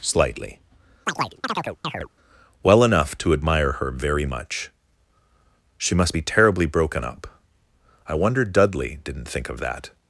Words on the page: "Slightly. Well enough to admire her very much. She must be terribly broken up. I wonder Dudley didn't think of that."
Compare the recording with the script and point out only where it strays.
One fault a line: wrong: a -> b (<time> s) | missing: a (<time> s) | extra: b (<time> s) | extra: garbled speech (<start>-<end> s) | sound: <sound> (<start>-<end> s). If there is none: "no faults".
sound: chirp (1.1-2.1 s)